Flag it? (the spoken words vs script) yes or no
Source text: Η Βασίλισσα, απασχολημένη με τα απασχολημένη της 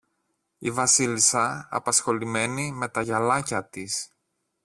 yes